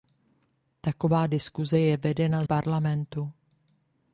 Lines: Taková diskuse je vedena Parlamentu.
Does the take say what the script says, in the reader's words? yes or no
yes